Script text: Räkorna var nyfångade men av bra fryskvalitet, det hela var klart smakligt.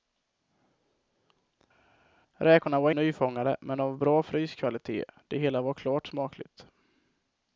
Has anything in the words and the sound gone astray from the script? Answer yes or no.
no